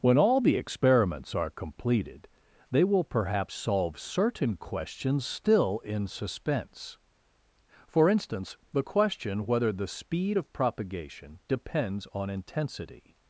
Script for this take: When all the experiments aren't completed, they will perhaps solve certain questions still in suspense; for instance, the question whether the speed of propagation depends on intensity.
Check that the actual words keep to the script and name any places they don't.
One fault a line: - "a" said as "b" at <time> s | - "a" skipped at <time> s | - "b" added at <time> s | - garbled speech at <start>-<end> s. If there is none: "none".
- "aren't" said as "are" at 1.4 s